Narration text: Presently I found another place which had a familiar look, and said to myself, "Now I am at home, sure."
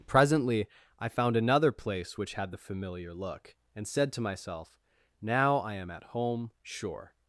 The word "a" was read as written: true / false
false